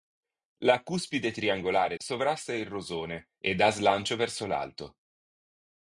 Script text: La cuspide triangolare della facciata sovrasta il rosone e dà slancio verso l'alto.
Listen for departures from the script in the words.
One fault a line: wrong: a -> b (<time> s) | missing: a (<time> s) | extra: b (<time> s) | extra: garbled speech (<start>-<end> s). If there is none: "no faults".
missing: della facciata (1.9 s)